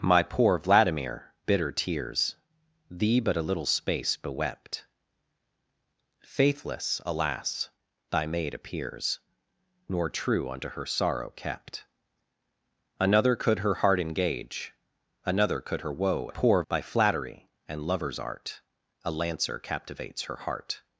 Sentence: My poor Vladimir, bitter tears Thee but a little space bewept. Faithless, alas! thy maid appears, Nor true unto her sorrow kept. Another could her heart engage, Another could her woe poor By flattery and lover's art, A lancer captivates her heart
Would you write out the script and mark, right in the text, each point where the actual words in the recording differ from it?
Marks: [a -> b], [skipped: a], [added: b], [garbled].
My poor Vladimir, bitter tears Thee but a little space bewept. Faithless, alas! thy maid appears, Nor true unto her sorrow kept. Another could her heart engage, Another could her woe poor By flattery and lover's art, A lancer captivates her heart